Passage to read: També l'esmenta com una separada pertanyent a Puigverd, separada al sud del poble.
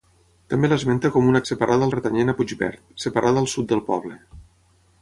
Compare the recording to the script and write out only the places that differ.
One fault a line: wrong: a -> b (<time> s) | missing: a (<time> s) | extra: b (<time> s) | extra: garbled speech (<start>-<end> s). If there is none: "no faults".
no faults